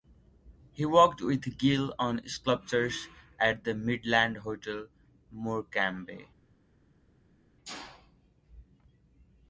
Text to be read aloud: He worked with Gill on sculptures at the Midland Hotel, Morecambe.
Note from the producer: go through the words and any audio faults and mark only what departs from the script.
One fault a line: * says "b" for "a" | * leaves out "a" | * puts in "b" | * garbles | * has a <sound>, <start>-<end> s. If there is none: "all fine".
all fine